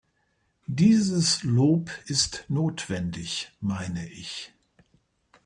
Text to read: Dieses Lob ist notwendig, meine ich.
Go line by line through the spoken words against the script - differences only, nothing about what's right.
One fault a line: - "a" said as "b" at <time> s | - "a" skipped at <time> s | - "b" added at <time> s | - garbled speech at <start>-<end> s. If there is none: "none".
none